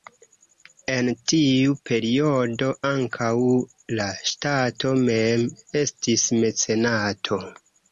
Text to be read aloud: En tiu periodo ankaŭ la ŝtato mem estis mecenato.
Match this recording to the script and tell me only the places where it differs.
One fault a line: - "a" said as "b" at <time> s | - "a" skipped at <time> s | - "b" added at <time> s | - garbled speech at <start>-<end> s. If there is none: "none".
none